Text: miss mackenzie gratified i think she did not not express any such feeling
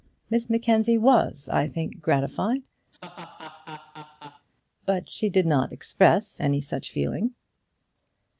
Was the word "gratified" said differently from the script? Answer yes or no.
yes